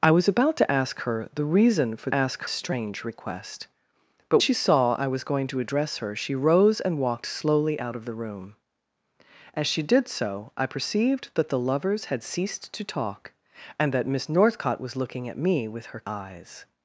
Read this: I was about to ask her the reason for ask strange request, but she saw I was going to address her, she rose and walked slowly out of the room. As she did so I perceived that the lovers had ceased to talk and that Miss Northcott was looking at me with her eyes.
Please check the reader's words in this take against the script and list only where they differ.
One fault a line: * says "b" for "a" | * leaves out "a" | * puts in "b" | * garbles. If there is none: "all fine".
all fine